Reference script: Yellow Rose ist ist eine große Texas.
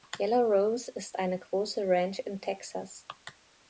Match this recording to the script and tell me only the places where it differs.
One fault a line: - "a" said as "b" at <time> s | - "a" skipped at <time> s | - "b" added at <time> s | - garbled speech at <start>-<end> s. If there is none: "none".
- "ist" skipped at 1.2 s
- "Ranch in" added at 1.9 s